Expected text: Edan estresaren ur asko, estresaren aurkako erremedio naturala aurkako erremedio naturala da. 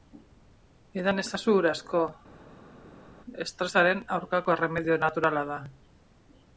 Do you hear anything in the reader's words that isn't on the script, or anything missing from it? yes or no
yes